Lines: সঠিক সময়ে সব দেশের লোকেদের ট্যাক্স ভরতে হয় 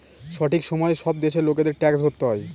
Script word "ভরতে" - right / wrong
right